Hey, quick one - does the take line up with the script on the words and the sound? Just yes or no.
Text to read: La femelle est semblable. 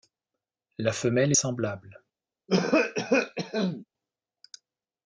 no